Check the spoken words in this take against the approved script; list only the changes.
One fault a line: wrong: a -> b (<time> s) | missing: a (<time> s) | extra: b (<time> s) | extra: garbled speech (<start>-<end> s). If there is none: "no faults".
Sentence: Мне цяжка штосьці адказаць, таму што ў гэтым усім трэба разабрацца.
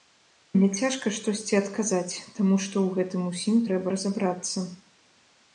no faults